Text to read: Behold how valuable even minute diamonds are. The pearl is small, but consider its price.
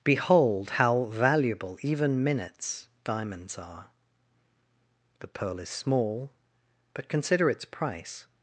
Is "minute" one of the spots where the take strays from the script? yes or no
yes